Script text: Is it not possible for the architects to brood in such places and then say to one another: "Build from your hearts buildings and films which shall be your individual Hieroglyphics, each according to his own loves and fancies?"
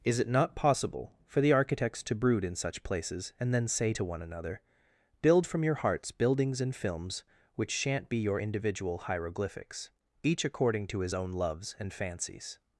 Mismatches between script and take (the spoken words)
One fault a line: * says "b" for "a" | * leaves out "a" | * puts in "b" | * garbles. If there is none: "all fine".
* says "shan't" for "shall"